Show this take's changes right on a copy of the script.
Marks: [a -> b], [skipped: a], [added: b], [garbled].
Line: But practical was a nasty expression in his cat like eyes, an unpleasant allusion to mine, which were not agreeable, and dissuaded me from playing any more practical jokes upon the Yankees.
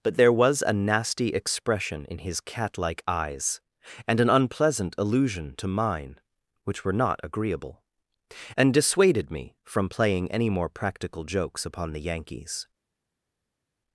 But [practical -> there] was a nasty expression in his cat like eyes, [added: and] an unpleasant allusion to mine, which were not agreeable, and dissuaded me from playing any more practical jokes upon the Yankees.